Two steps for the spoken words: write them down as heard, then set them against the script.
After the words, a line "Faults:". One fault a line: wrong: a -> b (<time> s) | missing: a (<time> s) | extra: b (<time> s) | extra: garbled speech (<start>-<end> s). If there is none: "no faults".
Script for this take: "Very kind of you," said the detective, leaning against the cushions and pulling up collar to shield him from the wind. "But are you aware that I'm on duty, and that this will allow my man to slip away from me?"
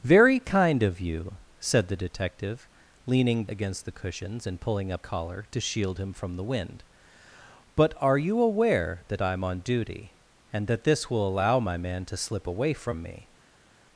"Very kind of you," said the detective, leaning against the cushions and pulling up collar to shield him from the wind. "But are you aware that I'm on duty, and that this will allow my man to slip away from me?"
Faults:
no faults